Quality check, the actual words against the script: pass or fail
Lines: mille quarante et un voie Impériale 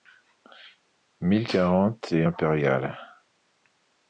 fail